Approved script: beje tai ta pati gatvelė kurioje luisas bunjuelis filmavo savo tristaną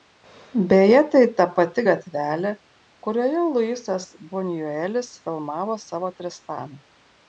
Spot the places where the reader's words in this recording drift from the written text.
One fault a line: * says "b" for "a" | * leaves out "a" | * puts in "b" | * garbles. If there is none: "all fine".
all fine